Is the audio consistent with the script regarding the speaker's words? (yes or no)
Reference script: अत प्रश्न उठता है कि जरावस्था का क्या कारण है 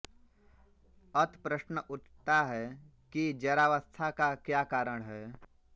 yes